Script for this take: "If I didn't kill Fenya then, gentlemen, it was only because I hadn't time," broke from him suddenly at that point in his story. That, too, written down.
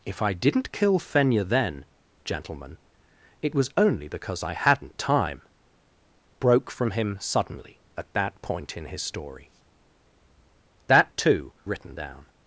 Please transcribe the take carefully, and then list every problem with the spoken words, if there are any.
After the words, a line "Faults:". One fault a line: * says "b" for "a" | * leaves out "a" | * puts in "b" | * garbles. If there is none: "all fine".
"If I didn't kill Fenya then, gentlemen, it was only because I hadn't time," broke from him suddenly at that point in his story. That, too, written down.
Faults:
all fine